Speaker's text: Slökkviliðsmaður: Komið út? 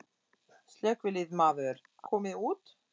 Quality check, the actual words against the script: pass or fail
pass